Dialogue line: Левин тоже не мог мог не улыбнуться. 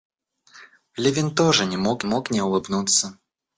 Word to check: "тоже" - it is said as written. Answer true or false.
true